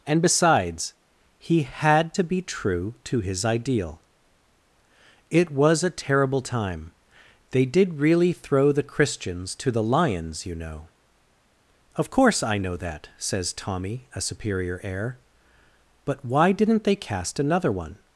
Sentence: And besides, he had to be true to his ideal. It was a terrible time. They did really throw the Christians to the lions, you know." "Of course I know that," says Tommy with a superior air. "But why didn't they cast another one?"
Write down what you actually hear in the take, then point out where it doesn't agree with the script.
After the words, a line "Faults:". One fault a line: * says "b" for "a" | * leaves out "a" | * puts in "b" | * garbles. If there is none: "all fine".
And besides, he had to be true to his ideal. It was a terrible time. They did really throw the Christians to the lions, you know." "Of course I know that," says Tommy a superior air. "But why didn't they cast another one?"
Faults:
* leaves out "with"